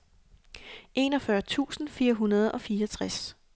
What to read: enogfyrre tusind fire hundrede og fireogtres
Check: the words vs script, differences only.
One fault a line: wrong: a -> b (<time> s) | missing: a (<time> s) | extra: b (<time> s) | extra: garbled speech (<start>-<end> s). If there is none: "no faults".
no faults